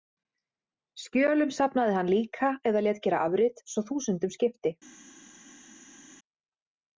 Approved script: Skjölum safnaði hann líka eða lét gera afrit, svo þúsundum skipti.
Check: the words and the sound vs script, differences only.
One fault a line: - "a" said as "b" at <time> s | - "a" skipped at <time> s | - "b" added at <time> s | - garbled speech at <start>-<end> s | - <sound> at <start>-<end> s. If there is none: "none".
none